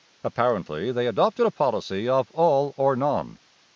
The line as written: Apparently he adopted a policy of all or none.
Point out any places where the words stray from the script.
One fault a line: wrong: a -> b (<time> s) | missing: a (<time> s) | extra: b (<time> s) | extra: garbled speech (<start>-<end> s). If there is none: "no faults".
wrong: he -> they (0.9 s)